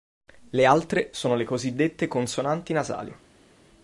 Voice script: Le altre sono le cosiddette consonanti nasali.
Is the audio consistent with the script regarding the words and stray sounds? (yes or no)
yes